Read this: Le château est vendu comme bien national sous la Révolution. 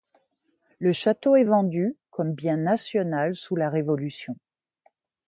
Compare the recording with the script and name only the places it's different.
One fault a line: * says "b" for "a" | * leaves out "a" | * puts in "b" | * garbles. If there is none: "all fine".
all fine